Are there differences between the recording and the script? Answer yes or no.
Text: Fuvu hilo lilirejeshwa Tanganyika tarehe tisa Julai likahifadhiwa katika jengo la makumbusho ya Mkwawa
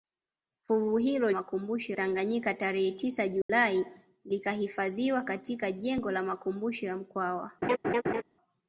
yes